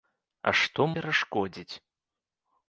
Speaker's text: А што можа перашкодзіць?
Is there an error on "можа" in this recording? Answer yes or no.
yes